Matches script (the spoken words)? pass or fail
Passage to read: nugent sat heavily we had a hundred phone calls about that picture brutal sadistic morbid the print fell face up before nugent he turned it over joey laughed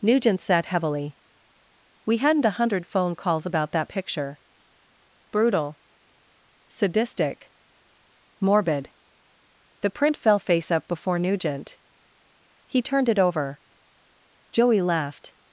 fail